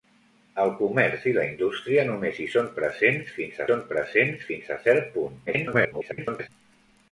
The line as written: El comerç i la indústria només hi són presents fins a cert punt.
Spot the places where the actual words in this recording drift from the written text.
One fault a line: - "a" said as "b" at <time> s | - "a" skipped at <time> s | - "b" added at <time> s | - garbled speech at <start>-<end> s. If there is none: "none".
- "són presents fins" added at 3.7 s
- garbled speech at 5.5-6.5 s